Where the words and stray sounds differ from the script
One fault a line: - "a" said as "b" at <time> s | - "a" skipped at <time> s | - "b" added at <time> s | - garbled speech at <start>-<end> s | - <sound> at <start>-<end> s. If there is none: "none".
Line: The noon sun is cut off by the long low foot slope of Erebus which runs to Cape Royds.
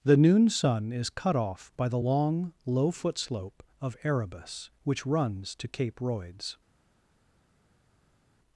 none